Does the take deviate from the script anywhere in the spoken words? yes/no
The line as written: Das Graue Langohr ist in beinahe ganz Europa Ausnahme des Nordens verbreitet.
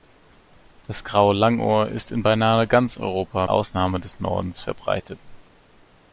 no